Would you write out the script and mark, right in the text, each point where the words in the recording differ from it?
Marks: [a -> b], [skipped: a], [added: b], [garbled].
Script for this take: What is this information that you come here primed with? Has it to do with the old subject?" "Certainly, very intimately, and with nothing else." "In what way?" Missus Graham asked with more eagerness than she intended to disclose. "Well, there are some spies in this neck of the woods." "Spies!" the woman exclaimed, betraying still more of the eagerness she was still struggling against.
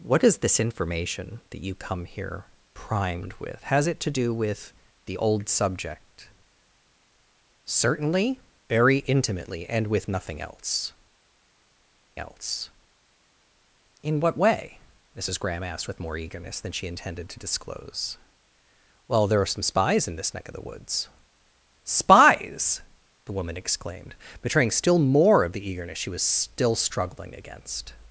What is this information that you come here primed with? Has it to do with the old subject?" "Certainly, very intimately, and with nothing else." [added: else] "In what way?" Missus Graham asked with more eagerness than she intended to disclose. "Well, there are some spies in this neck of the woods." "Spies!" the woman exclaimed, betraying still more of the eagerness she was still struggling against.